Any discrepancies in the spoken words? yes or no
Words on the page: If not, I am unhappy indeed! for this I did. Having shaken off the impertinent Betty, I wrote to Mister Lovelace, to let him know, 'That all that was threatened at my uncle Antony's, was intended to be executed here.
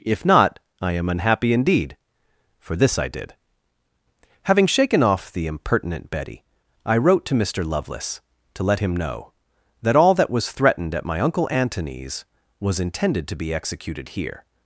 no